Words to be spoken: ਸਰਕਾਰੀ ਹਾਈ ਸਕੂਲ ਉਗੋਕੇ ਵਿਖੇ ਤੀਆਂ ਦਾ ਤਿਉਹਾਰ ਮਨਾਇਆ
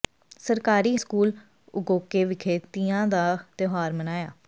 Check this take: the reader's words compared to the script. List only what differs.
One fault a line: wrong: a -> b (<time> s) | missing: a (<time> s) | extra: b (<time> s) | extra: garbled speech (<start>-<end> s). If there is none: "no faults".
missing: ਹਾਈ (0.9 s)